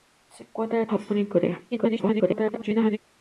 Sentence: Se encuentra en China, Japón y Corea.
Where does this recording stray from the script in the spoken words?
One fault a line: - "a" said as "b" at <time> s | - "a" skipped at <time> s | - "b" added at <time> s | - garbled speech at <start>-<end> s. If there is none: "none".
- "China" skipped at 0.9 s
- garbled speech at 1.7-3.0 s